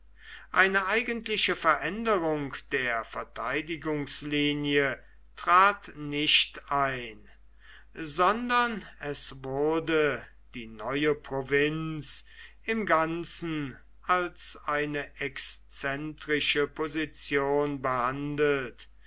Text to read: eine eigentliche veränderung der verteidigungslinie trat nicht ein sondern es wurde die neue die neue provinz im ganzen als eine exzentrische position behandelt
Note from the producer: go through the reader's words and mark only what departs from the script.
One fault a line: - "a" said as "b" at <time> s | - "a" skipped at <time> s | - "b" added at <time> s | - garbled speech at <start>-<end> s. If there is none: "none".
- "die neue" skipped at 11.1 s